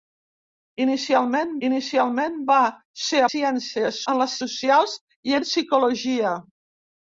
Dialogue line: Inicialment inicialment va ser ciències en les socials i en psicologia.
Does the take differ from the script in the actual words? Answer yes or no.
no